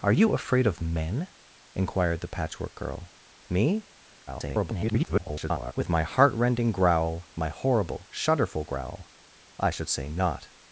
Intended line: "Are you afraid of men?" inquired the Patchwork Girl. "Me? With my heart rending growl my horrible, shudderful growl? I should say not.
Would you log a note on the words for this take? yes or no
yes